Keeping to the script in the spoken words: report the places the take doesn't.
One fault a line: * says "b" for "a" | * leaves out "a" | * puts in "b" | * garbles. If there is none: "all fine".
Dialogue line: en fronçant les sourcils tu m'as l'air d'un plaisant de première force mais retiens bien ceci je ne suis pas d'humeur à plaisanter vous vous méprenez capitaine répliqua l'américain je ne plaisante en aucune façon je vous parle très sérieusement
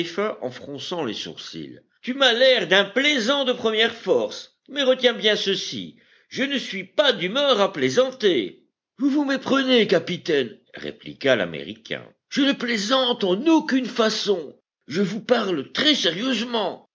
all fine